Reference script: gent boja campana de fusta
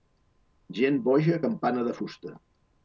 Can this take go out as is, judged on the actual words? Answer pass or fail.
pass